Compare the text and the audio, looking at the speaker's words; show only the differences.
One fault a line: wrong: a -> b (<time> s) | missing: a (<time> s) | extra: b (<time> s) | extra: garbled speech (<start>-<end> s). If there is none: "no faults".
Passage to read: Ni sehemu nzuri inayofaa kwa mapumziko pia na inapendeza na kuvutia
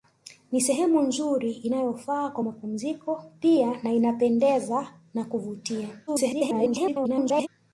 extra: garbled speech (6.1-7.5 s)